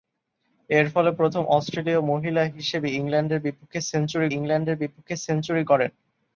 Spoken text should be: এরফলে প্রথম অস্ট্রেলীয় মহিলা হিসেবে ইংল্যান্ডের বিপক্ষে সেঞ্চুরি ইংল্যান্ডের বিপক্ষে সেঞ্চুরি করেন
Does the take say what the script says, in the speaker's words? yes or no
yes